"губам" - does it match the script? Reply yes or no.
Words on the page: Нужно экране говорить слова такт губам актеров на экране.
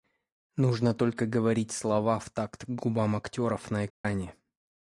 yes